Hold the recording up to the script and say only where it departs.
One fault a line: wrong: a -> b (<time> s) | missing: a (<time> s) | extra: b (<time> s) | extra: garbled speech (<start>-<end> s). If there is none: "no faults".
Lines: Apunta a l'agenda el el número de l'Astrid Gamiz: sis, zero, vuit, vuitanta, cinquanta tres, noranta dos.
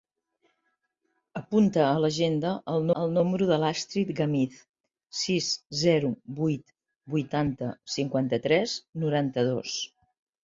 no faults